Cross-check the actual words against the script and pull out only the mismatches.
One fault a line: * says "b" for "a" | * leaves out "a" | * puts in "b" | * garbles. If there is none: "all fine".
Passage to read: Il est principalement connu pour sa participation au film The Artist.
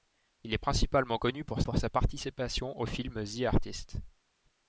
* puts in "pour"